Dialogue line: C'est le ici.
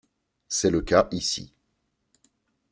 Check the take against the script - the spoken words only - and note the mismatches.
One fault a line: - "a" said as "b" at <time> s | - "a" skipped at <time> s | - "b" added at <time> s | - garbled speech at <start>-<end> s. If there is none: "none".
- "cas" added at 0.8 s